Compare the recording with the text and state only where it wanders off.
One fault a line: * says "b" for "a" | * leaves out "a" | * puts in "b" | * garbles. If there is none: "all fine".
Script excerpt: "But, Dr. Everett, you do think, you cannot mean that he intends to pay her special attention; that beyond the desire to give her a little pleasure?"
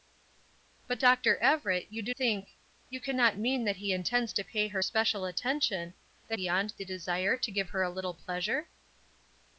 all fine